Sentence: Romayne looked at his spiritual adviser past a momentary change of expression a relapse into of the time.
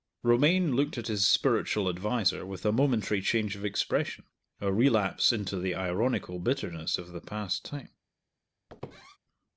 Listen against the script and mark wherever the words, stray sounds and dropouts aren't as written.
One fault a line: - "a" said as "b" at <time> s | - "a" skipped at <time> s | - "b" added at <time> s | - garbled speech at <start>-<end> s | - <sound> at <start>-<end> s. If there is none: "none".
- "past" said as "with" at 2.4 s
- "the ironical bitterness" added at 5.6 s
- "past" added at 7.2 s
- squeak at 8.7-9.2 s